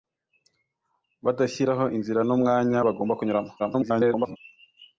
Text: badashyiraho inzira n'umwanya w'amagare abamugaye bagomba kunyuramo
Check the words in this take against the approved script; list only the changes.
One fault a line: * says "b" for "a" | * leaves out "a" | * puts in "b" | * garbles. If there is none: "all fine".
* leaves out "w'amagare abamugaye"
* garbles